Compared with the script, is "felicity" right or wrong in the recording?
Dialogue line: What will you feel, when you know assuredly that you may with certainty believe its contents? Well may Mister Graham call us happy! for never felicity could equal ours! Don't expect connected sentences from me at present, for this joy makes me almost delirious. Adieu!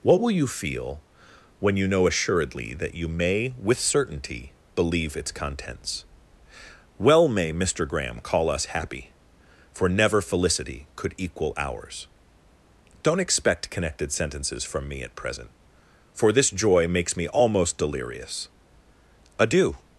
right